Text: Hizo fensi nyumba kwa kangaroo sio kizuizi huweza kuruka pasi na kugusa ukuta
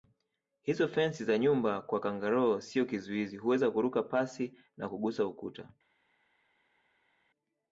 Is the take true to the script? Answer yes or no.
no